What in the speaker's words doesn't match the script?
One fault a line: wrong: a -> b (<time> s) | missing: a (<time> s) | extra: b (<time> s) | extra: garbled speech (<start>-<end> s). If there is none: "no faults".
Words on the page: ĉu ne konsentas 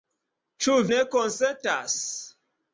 no faults